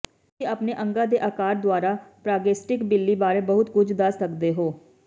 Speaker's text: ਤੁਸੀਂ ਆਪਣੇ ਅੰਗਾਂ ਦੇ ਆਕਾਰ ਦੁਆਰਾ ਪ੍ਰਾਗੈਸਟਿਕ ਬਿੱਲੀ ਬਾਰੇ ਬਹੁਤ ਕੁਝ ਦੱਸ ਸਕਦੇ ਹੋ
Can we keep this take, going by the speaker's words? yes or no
yes